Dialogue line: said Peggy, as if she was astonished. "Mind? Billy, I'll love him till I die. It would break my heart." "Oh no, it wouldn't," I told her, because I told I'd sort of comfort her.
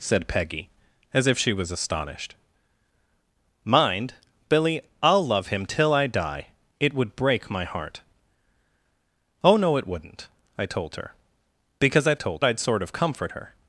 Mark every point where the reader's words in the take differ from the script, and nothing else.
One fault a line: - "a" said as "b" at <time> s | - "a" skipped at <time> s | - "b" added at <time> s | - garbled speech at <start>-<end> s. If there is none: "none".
none